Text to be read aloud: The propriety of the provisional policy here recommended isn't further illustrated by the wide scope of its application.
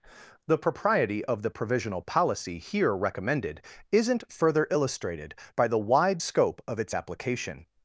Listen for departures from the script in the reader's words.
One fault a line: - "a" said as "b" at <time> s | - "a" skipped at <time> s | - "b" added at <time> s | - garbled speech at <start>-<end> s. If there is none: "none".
none